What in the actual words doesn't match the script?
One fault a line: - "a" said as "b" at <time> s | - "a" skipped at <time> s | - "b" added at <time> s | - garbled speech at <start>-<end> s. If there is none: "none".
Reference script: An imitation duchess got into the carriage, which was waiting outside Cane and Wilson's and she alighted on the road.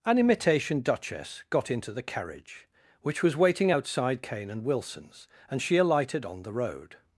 none